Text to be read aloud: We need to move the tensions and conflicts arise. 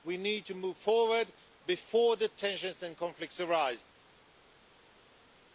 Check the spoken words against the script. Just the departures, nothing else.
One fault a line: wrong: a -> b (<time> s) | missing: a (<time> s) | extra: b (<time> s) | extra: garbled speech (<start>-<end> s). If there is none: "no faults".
extra: forward before (0.8 s)